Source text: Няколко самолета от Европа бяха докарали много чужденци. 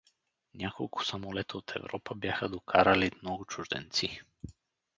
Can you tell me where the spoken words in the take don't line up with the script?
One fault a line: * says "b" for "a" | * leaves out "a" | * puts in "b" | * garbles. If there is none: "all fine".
all fine